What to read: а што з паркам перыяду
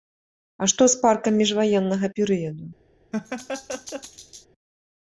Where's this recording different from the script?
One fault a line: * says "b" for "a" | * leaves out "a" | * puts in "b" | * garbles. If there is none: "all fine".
* puts in "міжваеннага"